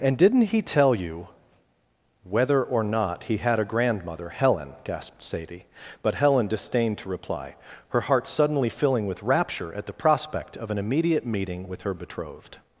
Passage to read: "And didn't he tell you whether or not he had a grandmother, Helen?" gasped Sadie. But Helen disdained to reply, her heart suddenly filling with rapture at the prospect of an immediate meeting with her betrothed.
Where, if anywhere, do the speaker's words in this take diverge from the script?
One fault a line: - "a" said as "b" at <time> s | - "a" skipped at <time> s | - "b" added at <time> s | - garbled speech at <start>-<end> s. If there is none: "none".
none